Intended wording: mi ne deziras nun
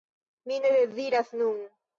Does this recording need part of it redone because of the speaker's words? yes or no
no